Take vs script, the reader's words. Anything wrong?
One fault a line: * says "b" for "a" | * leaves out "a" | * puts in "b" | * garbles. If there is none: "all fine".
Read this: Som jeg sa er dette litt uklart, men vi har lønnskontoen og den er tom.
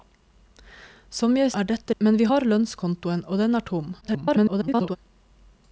* leaves out "sa"
* leaves out "litt uklart"
* garbles